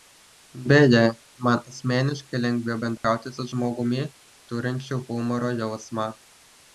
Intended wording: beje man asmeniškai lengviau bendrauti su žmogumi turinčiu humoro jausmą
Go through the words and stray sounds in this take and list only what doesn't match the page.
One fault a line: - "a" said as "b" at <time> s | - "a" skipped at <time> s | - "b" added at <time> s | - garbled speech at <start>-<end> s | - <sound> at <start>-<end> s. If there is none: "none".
- dropout at 3.0-3.0 s